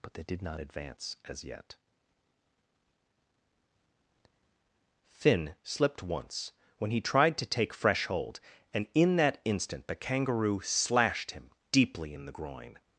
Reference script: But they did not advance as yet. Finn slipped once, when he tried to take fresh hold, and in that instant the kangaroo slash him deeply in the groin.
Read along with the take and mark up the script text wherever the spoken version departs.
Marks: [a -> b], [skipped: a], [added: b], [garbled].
But they did not advance as yet. Finn slipped once, when he tried to take fresh hold, and in that instant the kangaroo [slash -> slashed] him deeply in the groin.